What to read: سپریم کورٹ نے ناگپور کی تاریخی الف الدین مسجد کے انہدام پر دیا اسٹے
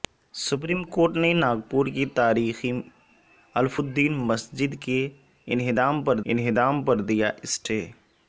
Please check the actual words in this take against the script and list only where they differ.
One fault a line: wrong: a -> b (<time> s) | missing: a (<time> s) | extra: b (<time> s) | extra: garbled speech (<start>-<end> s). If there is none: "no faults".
extra: انہدام پر (6.3 s)